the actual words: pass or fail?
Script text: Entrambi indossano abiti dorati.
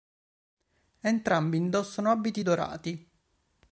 pass